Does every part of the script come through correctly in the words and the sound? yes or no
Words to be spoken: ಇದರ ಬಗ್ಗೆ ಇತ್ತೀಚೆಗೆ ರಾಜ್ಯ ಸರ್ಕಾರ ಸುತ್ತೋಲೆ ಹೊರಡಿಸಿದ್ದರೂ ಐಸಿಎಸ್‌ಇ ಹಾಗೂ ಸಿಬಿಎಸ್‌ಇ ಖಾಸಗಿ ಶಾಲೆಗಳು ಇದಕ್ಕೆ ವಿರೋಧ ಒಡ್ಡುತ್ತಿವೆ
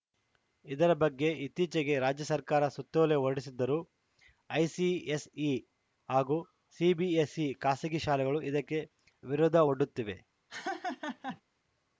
no